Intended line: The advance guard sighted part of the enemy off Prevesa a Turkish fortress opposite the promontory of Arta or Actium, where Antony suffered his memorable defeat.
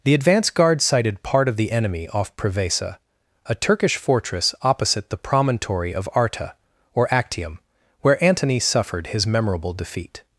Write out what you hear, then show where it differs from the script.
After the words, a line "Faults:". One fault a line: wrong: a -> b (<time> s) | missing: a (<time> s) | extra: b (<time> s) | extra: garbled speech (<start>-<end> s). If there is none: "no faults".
The advance guard sighted part of the enemy off Prevesa a Turkish fortress opposite the promontory of Arta or Actium, where Antony suffered his memorable defeat.
Faults:
no faults